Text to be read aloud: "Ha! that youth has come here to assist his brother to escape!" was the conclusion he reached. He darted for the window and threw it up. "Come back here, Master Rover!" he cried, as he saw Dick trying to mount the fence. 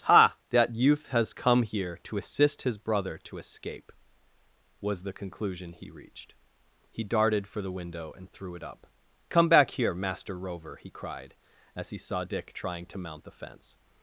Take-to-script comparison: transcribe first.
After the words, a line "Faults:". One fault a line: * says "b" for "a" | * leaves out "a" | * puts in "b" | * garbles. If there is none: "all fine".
"Ha! that youth has come here to assist his brother to escape!" was the conclusion he reached. He darted for the window and threw it up. "Come back here, Master Rover!" he cried, as he saw Dick trying to mount the fence.
Faults:
all fine